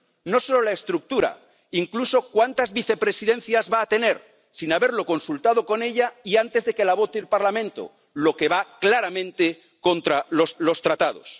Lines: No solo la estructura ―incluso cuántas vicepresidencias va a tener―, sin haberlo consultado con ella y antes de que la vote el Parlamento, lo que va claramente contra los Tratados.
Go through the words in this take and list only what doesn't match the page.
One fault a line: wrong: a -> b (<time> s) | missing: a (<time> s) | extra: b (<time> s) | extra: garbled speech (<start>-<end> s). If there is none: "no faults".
extra: los (10.6 s)